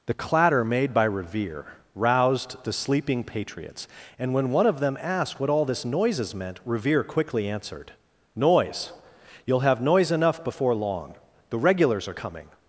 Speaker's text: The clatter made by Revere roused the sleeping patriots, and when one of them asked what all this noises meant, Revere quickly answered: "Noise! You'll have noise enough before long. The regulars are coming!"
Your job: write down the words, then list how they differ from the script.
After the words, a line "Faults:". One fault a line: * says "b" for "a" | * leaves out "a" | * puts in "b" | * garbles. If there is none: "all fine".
The clatter made by Revere roused the sleeping patriots, and when one of them asked what all this noises meant, Revere quickly answered: "Noise! You'll have noise enough before long. The regulars are coming!"
Faults:
all fine